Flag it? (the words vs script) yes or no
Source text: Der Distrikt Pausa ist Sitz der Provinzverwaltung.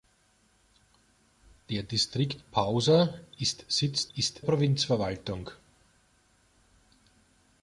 yes